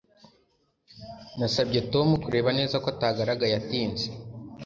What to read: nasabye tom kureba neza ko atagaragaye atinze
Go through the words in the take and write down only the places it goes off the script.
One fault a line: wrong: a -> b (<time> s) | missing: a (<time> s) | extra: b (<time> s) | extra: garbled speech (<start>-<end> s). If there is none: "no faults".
no faults